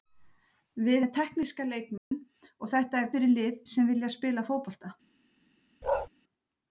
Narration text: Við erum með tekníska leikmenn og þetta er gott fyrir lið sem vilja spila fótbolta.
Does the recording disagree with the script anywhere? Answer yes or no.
yes